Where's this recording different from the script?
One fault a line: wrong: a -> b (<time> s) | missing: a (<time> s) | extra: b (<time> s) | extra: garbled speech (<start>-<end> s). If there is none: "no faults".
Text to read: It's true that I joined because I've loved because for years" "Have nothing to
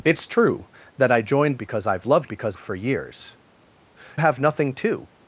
no faults